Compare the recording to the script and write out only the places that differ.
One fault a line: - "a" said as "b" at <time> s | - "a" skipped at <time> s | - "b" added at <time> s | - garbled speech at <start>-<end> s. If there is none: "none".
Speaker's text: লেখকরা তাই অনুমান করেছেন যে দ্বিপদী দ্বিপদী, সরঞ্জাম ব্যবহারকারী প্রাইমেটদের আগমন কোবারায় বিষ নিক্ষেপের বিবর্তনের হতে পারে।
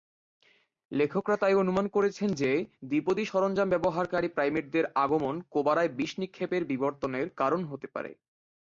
- "দ্বিপদী" skipped at 3.2 s
- "কারণ" added at 7.3 s